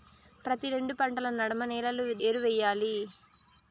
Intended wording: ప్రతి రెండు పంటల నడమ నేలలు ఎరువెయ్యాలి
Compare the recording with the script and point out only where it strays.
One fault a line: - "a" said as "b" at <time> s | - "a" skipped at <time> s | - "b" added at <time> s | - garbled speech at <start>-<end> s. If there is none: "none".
none